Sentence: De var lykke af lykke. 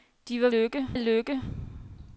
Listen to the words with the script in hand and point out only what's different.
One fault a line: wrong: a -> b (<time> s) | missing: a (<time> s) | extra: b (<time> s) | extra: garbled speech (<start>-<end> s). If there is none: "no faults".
no faults